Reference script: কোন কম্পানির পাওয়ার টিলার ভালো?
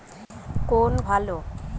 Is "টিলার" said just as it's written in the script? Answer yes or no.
no